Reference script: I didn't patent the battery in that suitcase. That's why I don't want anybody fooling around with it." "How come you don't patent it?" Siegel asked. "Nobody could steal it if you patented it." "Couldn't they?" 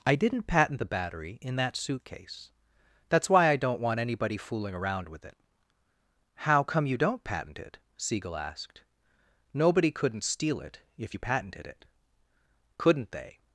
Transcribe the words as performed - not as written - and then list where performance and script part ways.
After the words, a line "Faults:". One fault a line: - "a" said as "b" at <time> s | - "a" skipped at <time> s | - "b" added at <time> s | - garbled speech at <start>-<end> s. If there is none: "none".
I didn't patent the battery in that suitcase. That's why I don't want anybody fooling around with it." "How come you don't patent it?" Siegel asked. "Nobody couldn't steal it if you patented it." "Couldn't they?"
Faults:
- "could" said as "couldn't" at 9.9 s